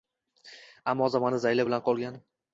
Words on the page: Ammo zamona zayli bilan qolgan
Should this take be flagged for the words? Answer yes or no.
no